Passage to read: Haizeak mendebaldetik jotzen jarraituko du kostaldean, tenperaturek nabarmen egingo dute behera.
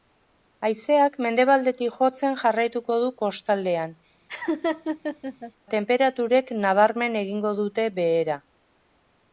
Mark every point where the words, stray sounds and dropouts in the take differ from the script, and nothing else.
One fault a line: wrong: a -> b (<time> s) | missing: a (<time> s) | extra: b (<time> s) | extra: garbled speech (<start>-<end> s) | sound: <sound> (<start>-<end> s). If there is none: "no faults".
sound: laugh (4.3-5.5 s)